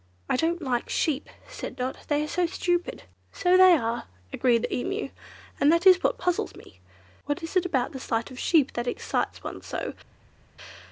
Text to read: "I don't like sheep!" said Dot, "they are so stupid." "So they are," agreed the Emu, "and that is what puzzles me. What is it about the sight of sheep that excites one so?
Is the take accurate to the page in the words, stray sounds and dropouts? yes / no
yes